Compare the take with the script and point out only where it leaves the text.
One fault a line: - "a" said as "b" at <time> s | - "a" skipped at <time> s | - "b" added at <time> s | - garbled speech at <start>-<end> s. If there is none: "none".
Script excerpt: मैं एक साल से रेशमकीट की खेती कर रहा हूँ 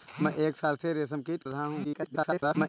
- "की खेती कर" skipped at 1.4 s
- garbled speech at 1.8-2.7 s